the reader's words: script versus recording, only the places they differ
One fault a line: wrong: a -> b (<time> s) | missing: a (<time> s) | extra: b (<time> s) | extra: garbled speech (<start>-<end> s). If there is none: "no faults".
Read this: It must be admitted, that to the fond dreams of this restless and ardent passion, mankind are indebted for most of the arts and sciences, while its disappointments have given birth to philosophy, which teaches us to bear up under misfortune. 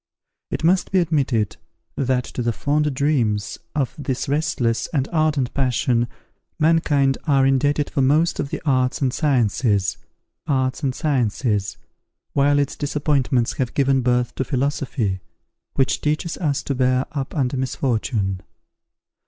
extra: arts and sciences (10.5 s)